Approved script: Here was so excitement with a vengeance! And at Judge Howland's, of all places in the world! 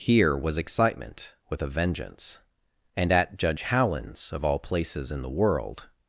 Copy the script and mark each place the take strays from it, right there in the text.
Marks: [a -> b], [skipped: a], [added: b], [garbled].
Here was [skipped: so] excitement with a vengeance! And at Judge Howland's, of all places in the world!